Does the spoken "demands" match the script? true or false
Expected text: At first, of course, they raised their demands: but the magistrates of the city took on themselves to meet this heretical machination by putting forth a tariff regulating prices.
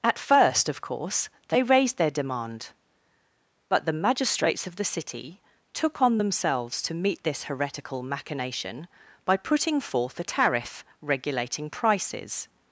false